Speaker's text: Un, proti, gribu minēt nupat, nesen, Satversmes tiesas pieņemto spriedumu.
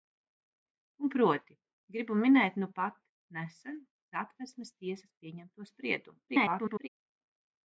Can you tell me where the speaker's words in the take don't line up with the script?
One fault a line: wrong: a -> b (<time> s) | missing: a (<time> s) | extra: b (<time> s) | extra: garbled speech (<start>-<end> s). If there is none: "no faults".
extra: garbled speech (6.3-6.9 s)